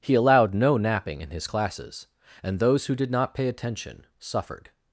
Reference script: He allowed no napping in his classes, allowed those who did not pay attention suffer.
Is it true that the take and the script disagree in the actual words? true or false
true